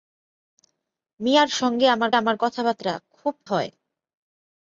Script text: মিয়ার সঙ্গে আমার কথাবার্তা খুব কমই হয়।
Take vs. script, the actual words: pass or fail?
fail